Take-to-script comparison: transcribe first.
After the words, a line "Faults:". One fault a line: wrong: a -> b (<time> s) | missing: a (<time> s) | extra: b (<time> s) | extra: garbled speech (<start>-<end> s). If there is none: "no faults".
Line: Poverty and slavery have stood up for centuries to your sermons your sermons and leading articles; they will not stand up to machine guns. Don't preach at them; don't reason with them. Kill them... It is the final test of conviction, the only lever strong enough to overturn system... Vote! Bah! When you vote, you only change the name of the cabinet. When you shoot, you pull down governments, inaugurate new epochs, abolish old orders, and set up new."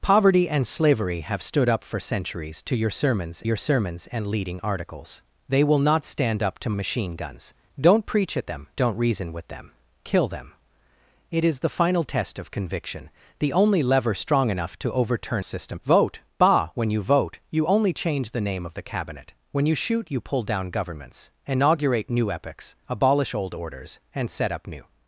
Poverty and slavery have stood up for centuries to your sermons your sermons and leading articles; they will not stand up to machine guns. Don't preach at them; don't reason with them. Kill them... It is the final test of conviction, the only lever strong enough to overturn system... Vote! Bah! When you vote, you only change the name of the cabinet. When you shoot, you pull down governments, inaugurate new epochs, abolish old orders, and set up new."
Faults:
no faults